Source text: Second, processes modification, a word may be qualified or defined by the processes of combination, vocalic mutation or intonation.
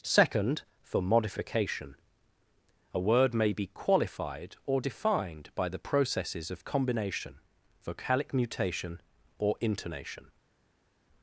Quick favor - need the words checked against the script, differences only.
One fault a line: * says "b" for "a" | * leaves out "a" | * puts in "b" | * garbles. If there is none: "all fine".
* says "for" for "processes"